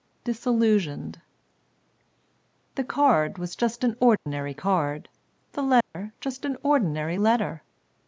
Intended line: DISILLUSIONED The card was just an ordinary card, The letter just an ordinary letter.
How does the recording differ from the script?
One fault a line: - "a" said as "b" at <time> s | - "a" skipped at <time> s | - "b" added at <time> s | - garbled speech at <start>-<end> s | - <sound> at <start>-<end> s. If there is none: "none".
- dropout at 4.2-4.3 s
- dropout at 5.8-5.9 s